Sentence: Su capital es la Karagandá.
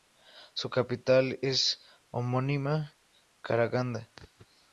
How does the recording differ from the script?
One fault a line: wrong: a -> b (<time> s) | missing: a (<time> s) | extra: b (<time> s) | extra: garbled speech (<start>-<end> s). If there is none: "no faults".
extra: homónima (2.2 s)